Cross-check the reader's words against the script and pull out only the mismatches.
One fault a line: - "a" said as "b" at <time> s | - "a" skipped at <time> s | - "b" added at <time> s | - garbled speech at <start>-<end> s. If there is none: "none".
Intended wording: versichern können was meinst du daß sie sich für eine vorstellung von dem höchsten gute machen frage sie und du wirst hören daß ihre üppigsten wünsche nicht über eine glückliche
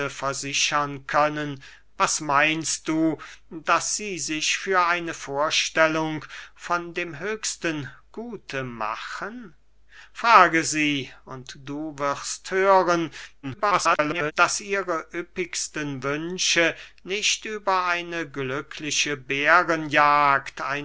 - garbled speech at 13.4-14.3 s